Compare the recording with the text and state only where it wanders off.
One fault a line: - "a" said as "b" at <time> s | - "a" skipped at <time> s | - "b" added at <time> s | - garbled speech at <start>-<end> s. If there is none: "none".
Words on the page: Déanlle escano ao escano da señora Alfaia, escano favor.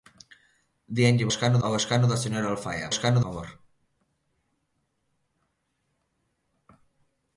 none